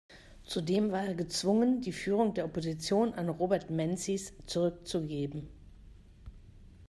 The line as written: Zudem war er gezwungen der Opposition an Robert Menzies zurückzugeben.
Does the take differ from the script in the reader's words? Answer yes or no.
yes